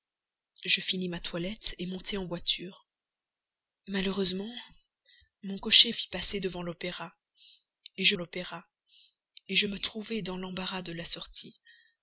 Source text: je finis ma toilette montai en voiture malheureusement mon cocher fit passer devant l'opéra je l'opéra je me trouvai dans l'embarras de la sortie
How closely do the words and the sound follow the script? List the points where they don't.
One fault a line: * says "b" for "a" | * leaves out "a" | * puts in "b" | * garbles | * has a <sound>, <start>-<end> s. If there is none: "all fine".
all fine